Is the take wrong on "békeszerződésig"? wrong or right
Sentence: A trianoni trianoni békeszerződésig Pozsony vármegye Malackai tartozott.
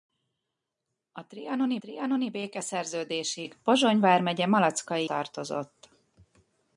right